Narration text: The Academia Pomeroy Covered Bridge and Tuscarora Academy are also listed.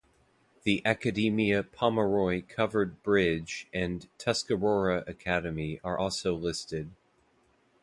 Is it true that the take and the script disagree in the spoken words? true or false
false